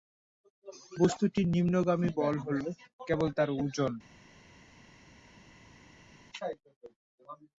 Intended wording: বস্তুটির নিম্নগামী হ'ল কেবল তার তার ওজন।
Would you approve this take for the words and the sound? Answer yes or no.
no